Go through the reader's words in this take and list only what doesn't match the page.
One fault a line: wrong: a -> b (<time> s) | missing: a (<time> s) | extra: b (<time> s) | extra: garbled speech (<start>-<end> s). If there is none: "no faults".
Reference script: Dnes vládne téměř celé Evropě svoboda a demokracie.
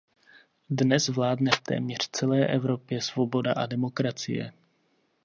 extra: v (1.5 s)